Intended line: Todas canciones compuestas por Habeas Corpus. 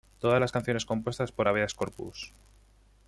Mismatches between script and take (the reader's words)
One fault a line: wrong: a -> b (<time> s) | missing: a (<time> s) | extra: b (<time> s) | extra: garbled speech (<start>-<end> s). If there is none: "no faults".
extra: las (0.4 s)